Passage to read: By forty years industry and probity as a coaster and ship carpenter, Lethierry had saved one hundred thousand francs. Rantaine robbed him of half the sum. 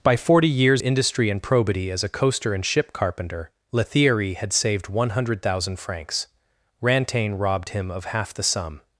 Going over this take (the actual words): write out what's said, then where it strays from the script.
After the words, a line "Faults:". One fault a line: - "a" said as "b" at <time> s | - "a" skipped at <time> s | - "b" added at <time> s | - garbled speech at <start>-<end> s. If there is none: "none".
By forty years industry and probity as a coaster and ship carpenter, Lethierry had saved one hundred thousand francs. Rantaine robbed him of half the sum.
Faults:
none